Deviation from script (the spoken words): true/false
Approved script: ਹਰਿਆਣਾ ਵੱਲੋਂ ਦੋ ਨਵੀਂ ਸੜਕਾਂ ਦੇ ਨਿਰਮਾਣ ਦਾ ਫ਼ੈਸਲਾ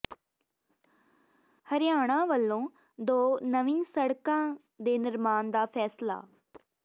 false